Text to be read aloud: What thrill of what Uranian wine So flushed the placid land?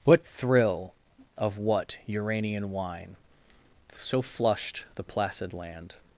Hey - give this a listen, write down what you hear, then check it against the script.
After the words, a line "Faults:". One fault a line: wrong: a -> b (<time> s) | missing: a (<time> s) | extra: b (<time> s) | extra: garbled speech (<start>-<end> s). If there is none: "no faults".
What thrill of what Uranian wine So flushed the placid land?
Faults:
no faults